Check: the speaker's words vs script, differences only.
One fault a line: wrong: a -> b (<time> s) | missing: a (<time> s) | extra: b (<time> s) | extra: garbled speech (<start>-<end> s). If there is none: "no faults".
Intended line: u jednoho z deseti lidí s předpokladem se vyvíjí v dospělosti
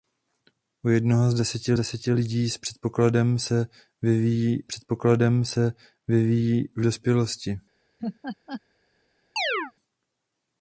extra: deseti (1.7 s)
extra: předpokladem se vyvíjí (4.6 s)